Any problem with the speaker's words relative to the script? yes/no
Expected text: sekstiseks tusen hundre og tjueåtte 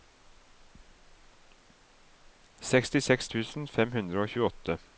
yes